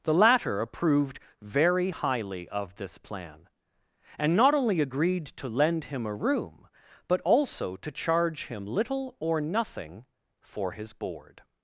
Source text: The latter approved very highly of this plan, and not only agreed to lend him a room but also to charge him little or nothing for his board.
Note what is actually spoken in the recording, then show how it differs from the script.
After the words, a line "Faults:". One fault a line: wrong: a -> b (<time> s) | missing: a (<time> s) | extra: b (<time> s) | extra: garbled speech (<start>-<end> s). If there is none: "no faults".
The latter approved very highly of this plan, and not only agreed to lend him a room but also to charge him little or nothing for his board.
Faults:
no faults